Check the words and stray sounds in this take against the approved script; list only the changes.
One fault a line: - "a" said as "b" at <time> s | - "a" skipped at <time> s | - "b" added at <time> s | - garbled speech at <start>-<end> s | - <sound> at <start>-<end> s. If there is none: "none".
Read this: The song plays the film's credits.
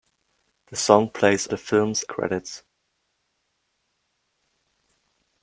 none